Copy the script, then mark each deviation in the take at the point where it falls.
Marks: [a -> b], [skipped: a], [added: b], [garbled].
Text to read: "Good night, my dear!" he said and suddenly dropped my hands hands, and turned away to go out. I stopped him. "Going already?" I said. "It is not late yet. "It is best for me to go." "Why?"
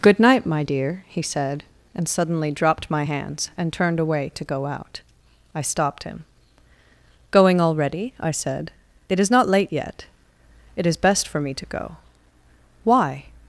"Good night, my dear!" he said and suddenly dropped my hands [skipped: hands,] and turned away to go out. I stopped him. "Going already?" I said. "It is not late yet. "It is best for me to go." "Why?"